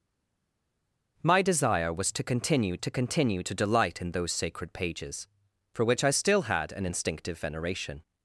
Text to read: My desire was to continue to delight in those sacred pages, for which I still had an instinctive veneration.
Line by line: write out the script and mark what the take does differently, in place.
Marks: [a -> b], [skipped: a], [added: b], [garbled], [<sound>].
My desire was to continue to [added: continue to] delight in those sacred pages, for which I still had an instinctive veneration.